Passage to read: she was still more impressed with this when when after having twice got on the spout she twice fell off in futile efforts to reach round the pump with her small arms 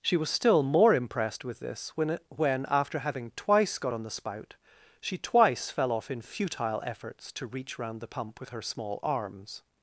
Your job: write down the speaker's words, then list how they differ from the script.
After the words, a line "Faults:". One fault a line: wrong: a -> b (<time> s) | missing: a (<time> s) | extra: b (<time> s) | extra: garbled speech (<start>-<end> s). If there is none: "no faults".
she was still more impressed with this when when after having twice got on the spout she twice fell off in futile efforts to reach round the pump with her small arms
Faults:
no faults